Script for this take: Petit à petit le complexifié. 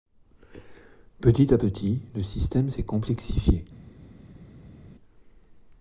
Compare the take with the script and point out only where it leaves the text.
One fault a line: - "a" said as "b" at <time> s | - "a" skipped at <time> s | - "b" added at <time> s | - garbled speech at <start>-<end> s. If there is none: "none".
- "système s'est" added at 2.2 s